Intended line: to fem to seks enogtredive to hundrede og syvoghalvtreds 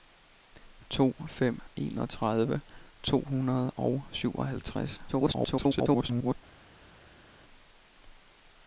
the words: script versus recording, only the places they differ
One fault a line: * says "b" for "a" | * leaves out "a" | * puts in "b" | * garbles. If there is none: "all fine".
* leaves out "to seks"
* garbles